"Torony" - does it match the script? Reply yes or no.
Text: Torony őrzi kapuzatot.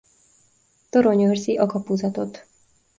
yes